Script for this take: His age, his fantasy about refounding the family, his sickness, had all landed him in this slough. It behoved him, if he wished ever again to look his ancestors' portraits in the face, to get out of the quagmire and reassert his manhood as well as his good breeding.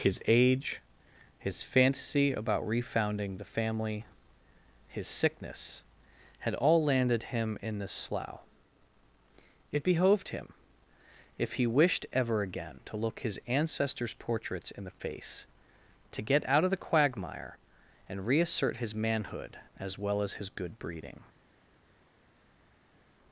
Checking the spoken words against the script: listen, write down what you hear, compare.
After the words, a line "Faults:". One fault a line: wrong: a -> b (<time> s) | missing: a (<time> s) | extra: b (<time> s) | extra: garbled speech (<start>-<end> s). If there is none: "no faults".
His age, his fantasy about refounding the family, his sickness, had all landed him in this slough. It behoved him, if he wished ever again to look his ancestors' portraits in the face, to get out of the quagmire and reassert his manhood as well as his good breeding.
Faults:
no faults